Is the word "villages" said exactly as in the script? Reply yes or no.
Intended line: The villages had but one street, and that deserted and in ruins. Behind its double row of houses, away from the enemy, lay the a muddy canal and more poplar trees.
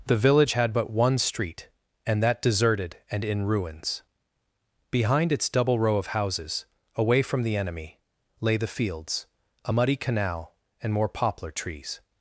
no